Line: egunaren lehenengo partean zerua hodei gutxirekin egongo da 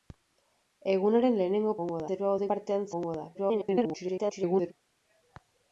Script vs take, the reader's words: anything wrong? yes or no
yes